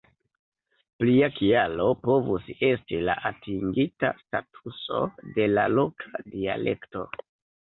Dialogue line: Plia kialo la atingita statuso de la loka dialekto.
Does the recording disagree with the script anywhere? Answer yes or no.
yes